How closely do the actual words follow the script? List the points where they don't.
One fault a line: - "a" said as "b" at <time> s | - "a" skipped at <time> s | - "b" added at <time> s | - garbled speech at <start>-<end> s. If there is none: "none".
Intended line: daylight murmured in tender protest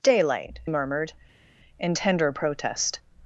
none